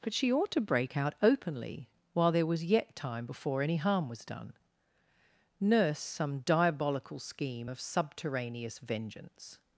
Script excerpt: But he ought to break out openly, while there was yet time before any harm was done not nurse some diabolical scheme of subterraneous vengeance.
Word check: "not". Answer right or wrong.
wrong